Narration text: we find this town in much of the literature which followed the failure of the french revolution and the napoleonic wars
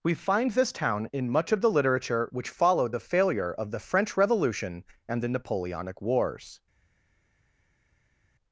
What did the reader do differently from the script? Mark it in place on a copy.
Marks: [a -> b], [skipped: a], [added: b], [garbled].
we find this town in much of the literature which followed the failure of the french revolution and the napoleonic wars